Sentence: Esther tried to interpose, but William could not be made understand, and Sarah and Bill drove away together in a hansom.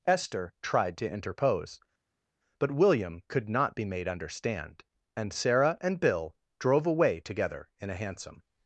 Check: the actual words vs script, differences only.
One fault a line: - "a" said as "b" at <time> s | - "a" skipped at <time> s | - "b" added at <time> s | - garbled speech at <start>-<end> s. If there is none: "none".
none